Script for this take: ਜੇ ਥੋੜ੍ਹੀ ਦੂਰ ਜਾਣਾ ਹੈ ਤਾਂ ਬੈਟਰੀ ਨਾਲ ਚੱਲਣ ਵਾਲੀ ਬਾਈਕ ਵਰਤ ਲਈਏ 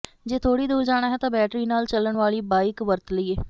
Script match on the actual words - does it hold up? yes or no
yes